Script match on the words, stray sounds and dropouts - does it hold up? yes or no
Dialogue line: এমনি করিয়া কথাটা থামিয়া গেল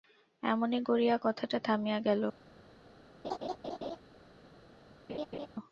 no